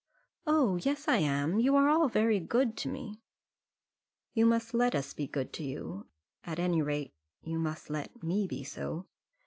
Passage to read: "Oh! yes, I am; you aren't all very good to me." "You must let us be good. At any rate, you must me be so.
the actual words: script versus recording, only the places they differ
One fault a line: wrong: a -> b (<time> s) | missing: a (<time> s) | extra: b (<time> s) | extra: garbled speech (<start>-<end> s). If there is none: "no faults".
wrong: aren't -> are (1.7 s)
extra: to you (5.5 s)
extra: let (7.9 s)